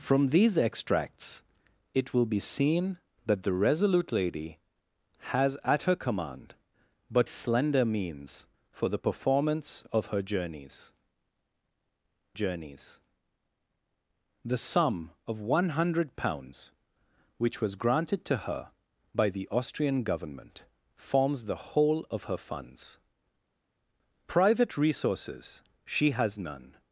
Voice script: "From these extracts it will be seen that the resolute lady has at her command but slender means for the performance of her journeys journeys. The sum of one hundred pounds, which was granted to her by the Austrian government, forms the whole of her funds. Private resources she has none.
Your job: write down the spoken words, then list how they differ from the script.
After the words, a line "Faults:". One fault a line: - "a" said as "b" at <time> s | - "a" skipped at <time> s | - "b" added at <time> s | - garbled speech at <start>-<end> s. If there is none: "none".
"From these extracts it will be seen that the resolute lady has at her command but slender means for the performance of her journeys journeys. The sum of one hundred pounds, which was granted to her by the Austrian government, forms the whole of her funds. Private resources she has none.
Faults:
none